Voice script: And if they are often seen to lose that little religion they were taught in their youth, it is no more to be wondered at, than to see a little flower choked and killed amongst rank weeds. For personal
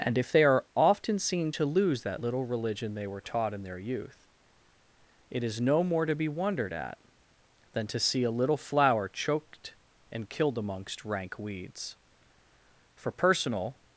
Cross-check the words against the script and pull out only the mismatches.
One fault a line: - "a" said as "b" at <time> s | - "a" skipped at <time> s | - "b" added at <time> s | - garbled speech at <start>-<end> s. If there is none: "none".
none